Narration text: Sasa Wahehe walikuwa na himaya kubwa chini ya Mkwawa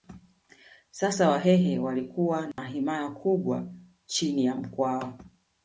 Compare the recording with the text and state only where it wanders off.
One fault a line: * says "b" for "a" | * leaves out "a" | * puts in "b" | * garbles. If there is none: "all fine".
all fine